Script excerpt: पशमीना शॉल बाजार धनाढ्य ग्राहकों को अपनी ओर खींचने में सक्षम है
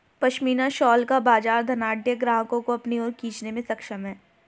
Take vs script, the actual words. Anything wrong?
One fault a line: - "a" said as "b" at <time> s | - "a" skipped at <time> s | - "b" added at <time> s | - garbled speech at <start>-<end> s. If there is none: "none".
- "का" added at 1.1 s